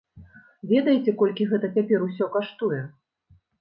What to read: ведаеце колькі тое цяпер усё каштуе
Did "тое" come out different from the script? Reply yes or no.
yes